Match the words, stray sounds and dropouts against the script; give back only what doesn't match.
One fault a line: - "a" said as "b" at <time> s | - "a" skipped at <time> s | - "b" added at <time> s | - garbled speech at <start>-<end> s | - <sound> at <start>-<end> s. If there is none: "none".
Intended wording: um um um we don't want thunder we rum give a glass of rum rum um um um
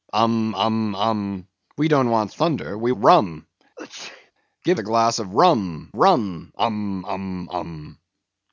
- sneeze at 3.8-4.3 s